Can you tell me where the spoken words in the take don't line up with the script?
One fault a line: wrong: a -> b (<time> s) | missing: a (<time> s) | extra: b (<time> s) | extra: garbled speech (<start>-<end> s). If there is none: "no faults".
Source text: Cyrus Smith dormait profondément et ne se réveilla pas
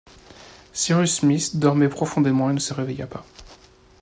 no faults